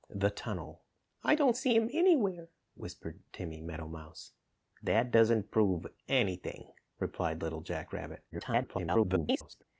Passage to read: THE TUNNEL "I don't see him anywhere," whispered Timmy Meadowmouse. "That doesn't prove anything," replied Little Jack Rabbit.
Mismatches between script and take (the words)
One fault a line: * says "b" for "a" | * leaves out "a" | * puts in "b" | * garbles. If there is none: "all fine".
* garbles